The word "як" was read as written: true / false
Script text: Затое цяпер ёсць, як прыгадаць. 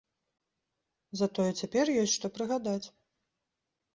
false